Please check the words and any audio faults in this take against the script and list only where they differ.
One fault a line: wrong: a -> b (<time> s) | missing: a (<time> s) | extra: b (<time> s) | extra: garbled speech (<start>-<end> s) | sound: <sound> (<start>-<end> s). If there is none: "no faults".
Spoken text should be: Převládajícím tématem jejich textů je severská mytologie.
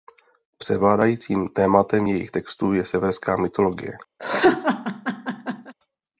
sound: laugh (4.2-5.7 s)